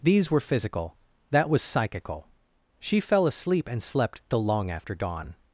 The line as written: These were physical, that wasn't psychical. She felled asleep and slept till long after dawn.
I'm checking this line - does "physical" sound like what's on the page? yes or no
yes